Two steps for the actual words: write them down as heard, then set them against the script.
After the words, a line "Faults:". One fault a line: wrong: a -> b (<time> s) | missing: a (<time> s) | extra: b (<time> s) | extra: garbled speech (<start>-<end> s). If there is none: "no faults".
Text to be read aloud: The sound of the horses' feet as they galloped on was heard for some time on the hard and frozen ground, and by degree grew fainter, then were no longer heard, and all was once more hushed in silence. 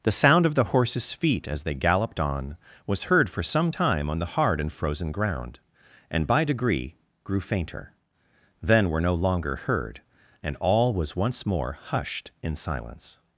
The sound of the horses' feet as they galloped on was heard for some time on the hard and frozen ground, and by degree grew fainter, then were no longer heard, and all was once more hushed in silence.
Faults:
no faults